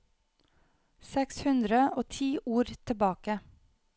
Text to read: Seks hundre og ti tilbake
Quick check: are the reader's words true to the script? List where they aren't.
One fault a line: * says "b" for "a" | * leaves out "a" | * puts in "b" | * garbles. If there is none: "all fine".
* puts in "ord"